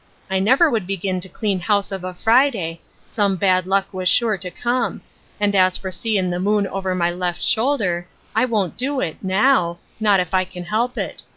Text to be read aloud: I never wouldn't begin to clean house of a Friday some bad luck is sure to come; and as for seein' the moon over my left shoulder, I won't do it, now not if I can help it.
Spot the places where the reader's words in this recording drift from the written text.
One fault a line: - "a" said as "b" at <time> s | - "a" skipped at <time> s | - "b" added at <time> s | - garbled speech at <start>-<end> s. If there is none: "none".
- "wouldn't" said as "would" at 0.7 s
- "is" said as "was" at 3.9 s